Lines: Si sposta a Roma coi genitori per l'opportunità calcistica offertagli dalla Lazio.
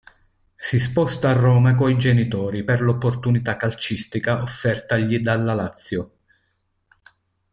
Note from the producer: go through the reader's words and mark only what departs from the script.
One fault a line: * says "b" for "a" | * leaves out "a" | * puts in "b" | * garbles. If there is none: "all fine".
all fine